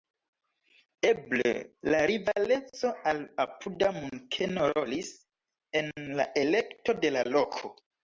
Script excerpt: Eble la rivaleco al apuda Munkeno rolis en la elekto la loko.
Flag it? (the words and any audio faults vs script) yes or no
yes